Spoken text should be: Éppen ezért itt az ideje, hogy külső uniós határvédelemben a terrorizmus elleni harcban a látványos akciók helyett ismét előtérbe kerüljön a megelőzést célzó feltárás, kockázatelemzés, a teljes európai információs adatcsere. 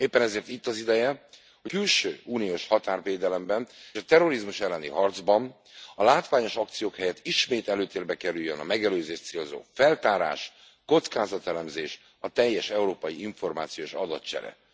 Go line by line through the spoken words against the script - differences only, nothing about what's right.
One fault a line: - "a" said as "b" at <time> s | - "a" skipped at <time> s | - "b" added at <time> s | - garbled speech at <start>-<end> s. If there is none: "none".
none